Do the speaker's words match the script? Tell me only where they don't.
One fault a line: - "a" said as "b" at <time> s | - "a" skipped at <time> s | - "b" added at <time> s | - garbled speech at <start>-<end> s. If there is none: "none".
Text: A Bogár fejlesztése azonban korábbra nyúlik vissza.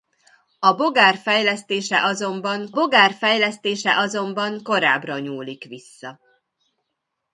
- "Bogár fejlesztése azonban" added at 2.7 s